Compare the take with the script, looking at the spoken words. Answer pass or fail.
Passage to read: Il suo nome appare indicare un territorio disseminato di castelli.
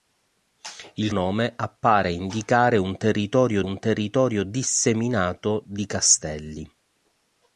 fail